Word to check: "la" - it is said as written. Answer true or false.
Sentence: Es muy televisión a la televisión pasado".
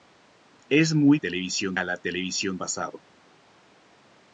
true